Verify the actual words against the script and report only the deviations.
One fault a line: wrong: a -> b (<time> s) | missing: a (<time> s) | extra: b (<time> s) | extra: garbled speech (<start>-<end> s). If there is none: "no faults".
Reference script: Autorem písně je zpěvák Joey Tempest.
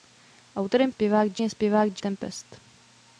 wrong: písně -> zpěvák (0.9 s)
missing: Joey (2.0 s)